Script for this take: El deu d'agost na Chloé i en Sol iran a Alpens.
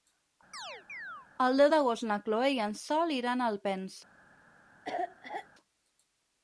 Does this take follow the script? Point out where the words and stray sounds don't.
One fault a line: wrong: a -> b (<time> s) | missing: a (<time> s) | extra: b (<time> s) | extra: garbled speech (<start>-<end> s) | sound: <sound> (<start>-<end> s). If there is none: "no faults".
sound: chirp (0.5-1.3 s)
sound: cough (4.8-5.5 s)